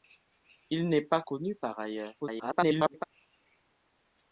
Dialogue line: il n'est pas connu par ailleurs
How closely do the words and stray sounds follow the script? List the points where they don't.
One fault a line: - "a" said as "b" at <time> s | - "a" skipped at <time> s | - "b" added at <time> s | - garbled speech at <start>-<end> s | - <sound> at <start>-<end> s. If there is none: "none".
- garbled speech at 2.2-3.0 s